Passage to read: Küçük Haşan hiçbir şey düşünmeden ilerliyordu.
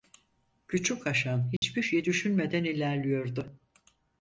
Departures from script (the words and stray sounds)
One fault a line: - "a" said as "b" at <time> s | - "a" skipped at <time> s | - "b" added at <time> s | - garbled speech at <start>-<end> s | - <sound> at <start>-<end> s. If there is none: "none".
- dropout at 1.6-1.6 s